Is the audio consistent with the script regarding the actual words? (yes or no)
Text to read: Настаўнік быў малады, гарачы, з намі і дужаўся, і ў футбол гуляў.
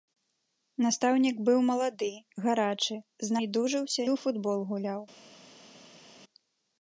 no